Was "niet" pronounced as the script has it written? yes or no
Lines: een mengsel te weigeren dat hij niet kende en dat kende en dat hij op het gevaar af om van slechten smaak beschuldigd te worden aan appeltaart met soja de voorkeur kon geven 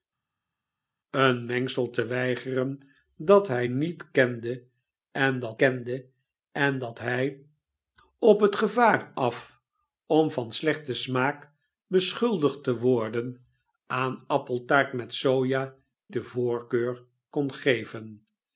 yes